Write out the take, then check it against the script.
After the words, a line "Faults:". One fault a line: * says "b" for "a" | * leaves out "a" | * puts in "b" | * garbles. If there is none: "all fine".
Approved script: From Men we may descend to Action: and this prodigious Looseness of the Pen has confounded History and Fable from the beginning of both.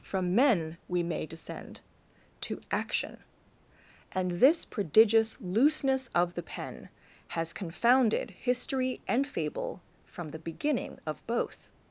From Men we may descend to Action: and this prodigious Looseness of the Pen has confounded History and Fable from the beginning of both.
Faults:
all fine